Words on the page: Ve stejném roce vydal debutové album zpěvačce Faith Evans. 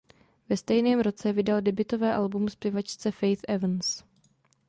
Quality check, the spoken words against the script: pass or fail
pass